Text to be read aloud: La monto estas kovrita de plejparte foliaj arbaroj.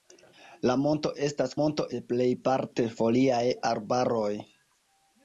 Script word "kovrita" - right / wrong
wrong